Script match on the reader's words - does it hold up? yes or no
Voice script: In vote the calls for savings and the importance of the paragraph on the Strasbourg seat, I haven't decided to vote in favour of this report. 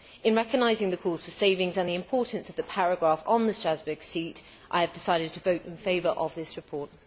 no